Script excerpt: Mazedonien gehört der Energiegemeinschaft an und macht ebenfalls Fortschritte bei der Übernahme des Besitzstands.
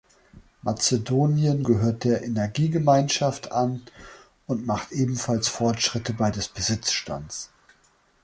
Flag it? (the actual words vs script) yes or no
yes